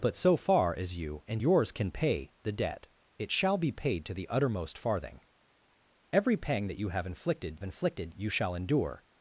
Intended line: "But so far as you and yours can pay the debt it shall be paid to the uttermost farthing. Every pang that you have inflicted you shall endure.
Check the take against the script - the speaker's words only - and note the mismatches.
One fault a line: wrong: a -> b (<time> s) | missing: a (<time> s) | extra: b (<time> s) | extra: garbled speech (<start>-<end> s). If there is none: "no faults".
extra: inflicted (7.6 s)